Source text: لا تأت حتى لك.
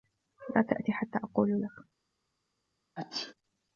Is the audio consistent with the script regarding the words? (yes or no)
no